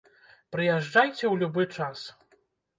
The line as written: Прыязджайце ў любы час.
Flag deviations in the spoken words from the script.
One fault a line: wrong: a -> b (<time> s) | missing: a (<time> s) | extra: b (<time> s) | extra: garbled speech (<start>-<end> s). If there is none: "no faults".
no faults